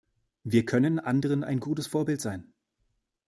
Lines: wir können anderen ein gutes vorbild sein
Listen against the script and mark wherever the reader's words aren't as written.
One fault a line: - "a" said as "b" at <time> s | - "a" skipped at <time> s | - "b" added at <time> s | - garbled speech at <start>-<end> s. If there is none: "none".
none